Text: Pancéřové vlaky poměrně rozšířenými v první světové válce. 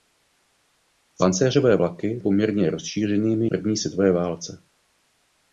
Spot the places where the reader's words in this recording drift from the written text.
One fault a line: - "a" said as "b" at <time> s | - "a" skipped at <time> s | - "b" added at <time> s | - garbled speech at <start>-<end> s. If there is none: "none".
none